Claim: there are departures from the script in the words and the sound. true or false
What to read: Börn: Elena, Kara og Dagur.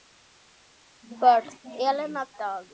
true